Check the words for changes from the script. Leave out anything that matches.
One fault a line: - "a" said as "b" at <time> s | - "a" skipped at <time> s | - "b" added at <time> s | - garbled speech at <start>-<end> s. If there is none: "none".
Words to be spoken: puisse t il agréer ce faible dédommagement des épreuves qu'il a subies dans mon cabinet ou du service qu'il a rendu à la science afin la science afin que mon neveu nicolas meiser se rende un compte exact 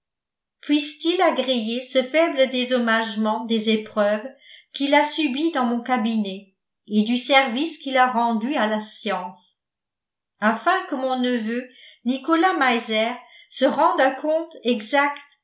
- "ou" said as "et" at 6.9 s
- "la science afin" skipped at 10.8 s